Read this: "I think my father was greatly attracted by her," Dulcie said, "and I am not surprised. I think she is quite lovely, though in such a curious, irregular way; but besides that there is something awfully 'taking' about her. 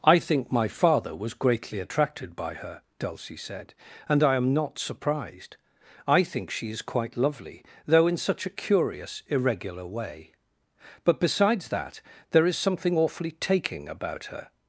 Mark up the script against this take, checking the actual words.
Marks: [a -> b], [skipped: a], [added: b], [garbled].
"I think my father was greatly attracted by her," Dulcie said, "and I am not surprised. I think she is quite lovely, though in such a curious, irregular way; but besides that there is something awfully 'taking' about her.